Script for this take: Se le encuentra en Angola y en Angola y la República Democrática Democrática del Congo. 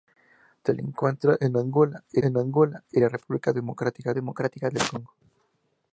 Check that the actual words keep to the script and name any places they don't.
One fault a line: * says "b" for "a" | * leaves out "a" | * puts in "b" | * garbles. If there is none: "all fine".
all fine